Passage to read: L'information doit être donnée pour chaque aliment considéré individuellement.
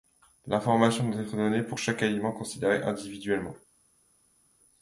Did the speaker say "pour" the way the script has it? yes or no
yes